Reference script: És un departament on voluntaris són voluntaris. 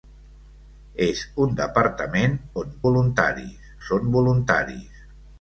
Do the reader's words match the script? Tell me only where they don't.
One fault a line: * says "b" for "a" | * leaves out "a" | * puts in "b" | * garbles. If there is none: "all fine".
all fine